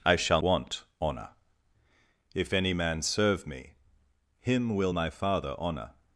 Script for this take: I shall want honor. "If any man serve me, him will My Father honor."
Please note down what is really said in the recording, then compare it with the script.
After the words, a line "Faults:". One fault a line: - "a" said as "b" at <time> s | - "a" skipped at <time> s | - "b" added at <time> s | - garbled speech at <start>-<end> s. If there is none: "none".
I shall want honor. "If any man serve me, him will My Father honor."
Faults:
none